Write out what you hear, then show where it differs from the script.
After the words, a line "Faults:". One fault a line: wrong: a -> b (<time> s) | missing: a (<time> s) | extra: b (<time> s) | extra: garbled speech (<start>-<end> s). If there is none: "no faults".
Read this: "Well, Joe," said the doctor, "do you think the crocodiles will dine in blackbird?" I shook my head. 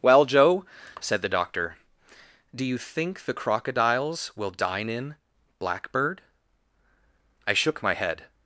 "Well, Joe," said the doctor, "do you think the crocodiles will dine in blackbird?" I shook my head.
Faults:
no faults